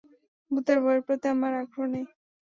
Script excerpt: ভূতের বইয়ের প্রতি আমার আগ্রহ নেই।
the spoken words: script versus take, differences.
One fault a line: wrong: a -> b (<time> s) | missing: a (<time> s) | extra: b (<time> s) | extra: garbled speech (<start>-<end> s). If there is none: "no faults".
no faults